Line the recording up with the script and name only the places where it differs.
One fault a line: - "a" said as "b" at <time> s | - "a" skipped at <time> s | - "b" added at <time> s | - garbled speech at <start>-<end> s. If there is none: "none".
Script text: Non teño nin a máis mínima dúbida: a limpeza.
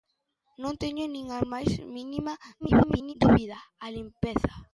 - garbled speech at 2.6-3.1 s